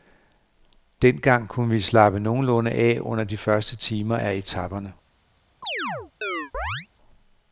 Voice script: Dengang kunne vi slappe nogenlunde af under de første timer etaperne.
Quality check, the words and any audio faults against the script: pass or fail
fail